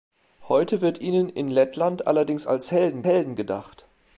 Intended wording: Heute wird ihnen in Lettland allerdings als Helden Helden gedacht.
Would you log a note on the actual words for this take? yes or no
no